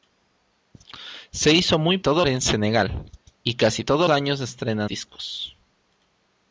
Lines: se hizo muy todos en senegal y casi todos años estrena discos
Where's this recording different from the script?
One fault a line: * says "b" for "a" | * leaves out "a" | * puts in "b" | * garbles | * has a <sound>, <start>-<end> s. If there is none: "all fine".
all fine